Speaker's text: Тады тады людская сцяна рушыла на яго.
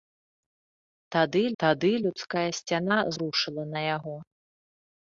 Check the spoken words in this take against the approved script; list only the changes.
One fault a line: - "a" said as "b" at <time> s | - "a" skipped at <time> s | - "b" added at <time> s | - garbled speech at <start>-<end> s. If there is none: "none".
none